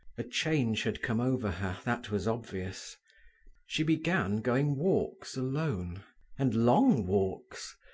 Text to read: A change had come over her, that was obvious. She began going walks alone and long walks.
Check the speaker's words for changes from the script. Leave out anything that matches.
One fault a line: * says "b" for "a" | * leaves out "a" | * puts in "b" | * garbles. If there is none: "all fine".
all fine